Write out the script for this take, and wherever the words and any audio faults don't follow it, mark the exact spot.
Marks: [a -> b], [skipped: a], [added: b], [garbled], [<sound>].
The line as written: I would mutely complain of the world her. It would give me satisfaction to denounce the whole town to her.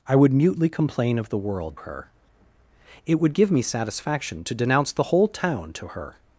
I would mutely complain of the world her. It would give me satisfaction to denounce the whole town to her.